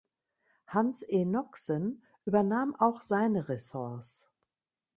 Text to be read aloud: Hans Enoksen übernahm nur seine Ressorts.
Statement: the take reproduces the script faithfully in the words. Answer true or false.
false